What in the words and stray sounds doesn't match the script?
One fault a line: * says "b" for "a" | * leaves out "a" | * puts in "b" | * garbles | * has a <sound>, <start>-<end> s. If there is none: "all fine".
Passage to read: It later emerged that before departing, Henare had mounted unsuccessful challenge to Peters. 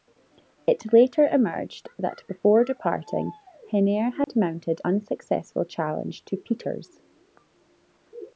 * has a dropout, 4.2-4.3 s